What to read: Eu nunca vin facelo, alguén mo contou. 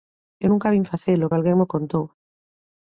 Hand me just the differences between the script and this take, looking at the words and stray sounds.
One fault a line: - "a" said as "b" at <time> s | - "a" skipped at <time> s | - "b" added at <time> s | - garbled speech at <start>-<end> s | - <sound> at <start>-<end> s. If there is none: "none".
none